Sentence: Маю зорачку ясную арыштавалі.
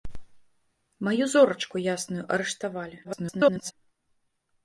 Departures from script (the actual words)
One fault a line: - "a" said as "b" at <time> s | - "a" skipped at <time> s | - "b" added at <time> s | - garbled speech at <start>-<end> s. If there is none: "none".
- garbled speech at 3.0-3.7 s